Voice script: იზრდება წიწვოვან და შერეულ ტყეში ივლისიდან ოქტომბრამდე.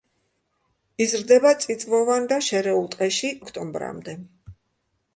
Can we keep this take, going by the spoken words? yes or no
no